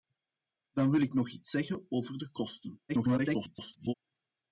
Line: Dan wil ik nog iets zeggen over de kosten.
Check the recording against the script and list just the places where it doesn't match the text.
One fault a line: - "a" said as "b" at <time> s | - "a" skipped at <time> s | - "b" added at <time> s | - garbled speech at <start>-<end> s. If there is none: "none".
- garbled speech at 2.9-3.9 s